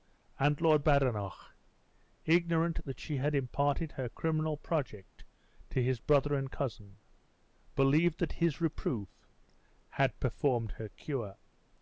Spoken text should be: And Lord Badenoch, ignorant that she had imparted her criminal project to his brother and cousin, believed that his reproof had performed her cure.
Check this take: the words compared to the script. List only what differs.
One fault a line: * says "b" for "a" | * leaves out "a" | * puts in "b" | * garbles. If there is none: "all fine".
all fine